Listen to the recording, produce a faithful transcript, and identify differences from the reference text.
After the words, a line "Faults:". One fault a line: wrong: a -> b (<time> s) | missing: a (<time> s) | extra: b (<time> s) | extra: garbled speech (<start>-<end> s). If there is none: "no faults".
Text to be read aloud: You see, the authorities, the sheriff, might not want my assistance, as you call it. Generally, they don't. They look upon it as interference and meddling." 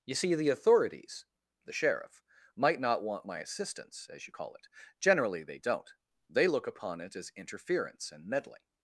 You see, the authorities, the sheriff, might not want my assistance, as you call it. Generally, they don't. They look upon it as interference and meddling."
Faults:
no faults